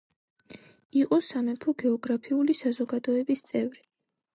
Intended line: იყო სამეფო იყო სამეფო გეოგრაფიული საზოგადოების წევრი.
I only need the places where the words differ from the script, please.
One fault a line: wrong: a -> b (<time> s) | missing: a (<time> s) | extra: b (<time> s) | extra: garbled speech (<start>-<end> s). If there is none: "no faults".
missing: იყო სამეფო (1.8 s)